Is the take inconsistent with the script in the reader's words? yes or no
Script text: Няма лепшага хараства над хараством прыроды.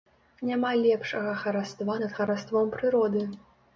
no